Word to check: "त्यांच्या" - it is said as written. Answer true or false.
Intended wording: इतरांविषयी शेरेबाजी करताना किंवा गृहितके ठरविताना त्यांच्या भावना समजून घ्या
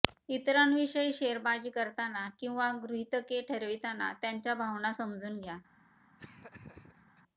true